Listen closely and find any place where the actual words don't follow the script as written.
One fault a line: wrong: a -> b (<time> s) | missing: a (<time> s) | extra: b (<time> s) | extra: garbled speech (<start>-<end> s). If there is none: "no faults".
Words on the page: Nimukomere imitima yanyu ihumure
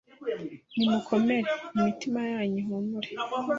no faults